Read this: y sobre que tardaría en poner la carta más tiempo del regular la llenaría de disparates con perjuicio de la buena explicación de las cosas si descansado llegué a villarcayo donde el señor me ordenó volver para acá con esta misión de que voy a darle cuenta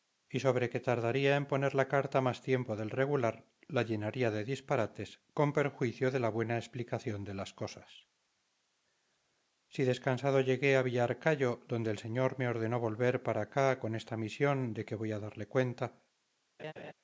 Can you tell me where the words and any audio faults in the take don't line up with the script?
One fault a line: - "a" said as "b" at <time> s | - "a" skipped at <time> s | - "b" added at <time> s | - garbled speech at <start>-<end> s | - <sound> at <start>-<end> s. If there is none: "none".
- laugh at 16.6-16.9 s